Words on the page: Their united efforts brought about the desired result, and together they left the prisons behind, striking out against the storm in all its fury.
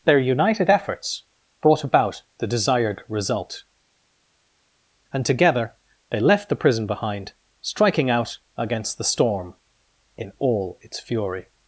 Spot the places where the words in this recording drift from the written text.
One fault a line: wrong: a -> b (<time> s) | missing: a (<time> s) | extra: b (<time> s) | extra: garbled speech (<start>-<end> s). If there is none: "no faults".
wrong: prisons -> prison (6.5 s)